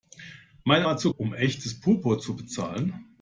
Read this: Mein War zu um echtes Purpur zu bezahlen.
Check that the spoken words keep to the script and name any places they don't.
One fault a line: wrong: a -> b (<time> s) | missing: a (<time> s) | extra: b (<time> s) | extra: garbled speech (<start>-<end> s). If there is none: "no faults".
no faults